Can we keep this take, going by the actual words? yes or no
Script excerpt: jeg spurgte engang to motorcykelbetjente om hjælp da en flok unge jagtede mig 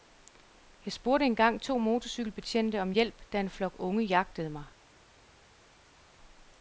yes